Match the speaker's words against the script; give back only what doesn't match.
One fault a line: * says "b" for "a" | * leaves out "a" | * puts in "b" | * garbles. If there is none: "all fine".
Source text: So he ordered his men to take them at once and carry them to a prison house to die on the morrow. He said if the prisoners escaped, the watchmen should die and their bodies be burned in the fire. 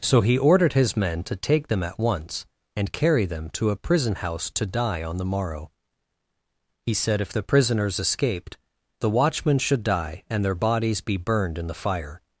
all fine